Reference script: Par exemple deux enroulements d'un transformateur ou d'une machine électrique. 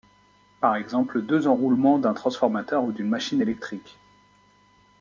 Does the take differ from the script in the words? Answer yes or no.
no